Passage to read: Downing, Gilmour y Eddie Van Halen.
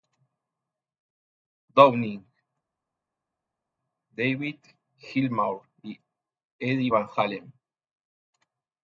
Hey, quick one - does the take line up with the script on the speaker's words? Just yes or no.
no